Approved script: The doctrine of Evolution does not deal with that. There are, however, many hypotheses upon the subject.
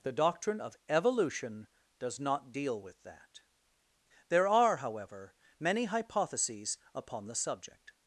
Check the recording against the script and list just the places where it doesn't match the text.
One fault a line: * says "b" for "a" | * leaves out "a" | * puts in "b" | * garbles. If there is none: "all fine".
all fine